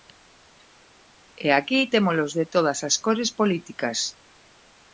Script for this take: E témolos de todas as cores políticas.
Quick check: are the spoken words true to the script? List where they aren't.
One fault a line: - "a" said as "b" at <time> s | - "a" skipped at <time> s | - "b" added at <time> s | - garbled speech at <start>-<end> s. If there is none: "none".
- "aquí" added at 1.6 s